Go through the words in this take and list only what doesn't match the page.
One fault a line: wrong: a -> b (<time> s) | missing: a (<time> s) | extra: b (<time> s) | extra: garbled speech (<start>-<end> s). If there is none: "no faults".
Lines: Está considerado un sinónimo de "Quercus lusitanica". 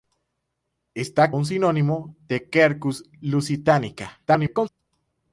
missing: considerado (1.3 s)
extra: garbled speech (4.3-4.7 s)